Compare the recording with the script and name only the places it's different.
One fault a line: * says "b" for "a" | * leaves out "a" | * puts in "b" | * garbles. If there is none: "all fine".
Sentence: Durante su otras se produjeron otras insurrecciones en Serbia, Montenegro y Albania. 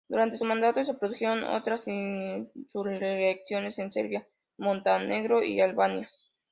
* says "mandato" for "otras"